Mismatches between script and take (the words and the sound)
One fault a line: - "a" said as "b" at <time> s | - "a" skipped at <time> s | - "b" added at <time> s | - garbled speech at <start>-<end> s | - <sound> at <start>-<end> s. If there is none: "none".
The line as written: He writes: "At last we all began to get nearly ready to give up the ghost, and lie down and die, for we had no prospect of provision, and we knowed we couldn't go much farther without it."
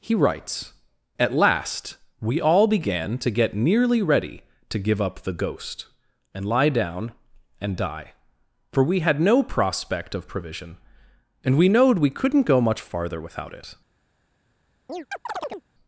- chirp at 14.9-15.7 s